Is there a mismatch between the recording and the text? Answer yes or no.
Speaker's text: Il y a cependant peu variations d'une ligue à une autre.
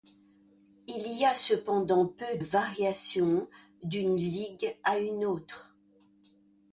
no